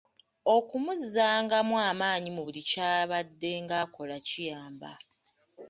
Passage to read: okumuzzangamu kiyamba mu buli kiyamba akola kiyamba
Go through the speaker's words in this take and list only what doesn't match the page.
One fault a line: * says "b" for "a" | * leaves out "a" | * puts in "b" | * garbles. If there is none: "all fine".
* says "amaanyi" for "kiyamba"
* says "kyabaddenga" for "kiyamba"